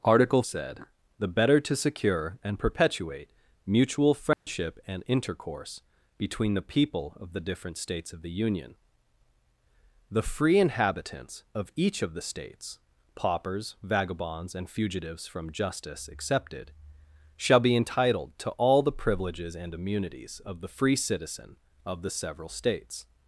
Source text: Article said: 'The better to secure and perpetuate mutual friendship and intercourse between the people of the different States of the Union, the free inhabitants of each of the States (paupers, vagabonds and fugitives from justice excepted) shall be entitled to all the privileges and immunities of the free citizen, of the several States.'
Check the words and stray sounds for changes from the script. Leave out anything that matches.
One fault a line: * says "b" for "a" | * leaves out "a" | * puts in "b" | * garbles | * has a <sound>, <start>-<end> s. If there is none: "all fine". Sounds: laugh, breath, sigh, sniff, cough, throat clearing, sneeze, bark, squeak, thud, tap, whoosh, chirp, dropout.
* has a dropout, 4.3-4.5 s